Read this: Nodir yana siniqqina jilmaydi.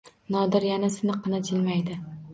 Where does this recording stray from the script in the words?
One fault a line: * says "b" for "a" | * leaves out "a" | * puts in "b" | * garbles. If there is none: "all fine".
all fine